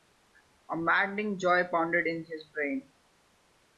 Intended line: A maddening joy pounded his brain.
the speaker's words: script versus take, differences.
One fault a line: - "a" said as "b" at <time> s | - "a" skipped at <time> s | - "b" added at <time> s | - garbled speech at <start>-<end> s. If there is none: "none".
- "in" added at 2.1 s